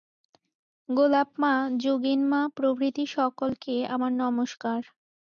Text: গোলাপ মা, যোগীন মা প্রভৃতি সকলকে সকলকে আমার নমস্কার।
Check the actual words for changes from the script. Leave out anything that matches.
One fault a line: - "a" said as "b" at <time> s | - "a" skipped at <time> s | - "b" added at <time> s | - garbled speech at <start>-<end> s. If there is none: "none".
- "সকলকে" skipped at 3.8 s